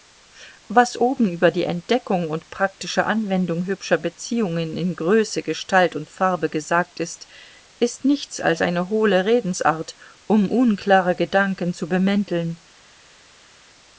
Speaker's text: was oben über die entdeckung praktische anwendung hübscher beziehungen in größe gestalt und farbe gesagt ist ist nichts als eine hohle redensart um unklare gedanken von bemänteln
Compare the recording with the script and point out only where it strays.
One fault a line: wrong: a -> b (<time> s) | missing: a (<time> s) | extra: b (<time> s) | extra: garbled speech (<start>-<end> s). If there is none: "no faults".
extra: und (2.3 s)
wrong: von -> zu (11.7 s)